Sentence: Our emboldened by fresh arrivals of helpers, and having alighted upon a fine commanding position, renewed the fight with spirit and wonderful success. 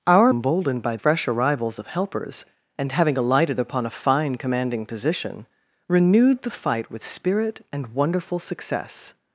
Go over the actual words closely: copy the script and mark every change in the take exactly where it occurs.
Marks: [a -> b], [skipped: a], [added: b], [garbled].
Our emboldened by fresh arrivals of helpers, and having alighted upon a fine commanding position, renewed the fight with spirit and wonderful success.